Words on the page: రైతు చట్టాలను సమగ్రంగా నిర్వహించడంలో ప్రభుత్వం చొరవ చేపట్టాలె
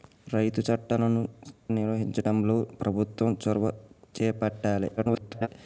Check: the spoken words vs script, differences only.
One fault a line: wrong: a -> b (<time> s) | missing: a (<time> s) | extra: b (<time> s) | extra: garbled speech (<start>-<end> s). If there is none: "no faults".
missing: సమగ్రంగా (1.2 s)
extra: garbled speech (5.0-5.5 s)